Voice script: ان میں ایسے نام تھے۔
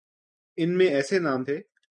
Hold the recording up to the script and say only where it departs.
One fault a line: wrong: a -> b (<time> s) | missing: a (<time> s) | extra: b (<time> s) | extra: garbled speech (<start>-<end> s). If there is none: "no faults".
no faults